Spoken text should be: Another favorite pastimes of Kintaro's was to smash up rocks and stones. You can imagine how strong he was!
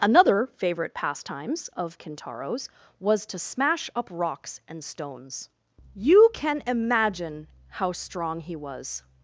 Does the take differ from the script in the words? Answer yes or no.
no